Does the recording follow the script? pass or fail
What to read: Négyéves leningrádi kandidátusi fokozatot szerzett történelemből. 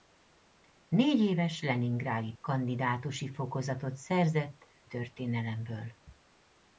pass